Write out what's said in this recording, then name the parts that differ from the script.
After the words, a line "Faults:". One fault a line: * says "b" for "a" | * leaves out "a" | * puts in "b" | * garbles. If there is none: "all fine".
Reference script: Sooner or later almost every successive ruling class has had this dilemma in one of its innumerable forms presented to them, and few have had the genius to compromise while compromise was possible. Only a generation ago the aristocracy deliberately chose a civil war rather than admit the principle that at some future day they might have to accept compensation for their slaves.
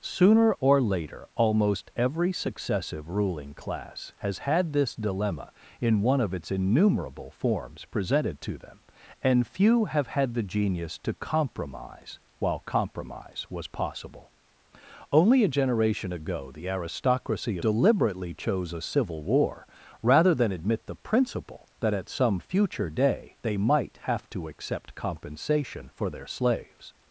Sooner or later almost every successive ruling class has had this dilemma in one of its innumerable forms presented to them, and few have had the genius to compromise while compromise was possible. Only a generation ago the aristocracy deliberately chose a civil war rather than admit the principle that at some future day they might have to accept compensation for their slaves.
Faults:
all fine